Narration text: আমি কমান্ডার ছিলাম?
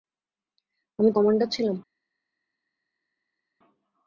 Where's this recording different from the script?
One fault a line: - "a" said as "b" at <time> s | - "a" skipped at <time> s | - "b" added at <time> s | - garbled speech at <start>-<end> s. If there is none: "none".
none